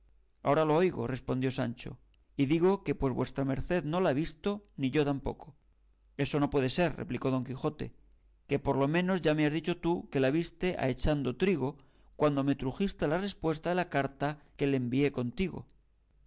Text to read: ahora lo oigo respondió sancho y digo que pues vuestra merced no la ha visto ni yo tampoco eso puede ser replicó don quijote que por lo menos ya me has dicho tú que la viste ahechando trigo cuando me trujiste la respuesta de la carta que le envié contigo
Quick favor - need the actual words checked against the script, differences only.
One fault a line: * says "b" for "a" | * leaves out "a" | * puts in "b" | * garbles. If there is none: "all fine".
* puts in "no"